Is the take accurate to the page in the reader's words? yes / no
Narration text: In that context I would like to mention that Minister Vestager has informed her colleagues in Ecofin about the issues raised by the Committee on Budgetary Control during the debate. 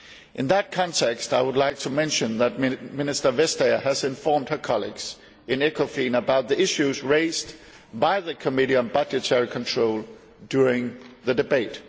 yes